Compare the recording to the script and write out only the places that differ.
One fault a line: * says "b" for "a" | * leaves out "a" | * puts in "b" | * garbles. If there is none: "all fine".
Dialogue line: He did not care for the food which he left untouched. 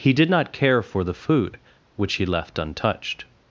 all fine